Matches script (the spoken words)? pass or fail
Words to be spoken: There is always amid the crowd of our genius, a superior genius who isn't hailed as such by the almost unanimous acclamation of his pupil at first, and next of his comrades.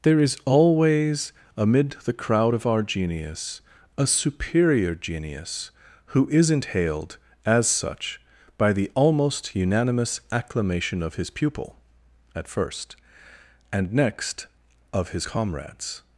pass